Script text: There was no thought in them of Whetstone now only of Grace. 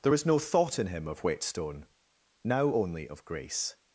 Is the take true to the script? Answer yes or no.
no